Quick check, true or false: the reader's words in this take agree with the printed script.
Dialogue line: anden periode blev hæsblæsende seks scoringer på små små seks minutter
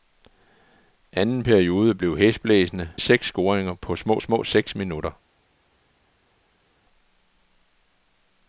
true